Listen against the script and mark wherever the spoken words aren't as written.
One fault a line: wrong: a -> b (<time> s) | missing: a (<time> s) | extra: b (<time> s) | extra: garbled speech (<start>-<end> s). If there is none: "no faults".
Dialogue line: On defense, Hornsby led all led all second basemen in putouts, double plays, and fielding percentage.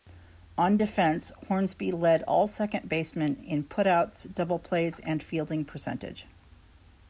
missing: led all (2.5 s)